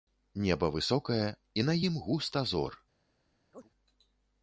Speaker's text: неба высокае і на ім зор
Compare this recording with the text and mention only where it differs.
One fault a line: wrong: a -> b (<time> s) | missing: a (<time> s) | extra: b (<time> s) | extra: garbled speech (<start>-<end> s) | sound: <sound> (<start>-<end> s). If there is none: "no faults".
extra: густа (2.0 s)
sound: chirp (3.5-3.7 s)